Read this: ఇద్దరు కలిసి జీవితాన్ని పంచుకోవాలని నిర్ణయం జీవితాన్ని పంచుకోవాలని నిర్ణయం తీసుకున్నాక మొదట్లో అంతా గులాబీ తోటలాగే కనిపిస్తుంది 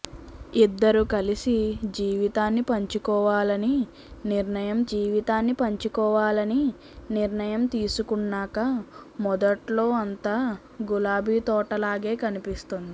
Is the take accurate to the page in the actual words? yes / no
yes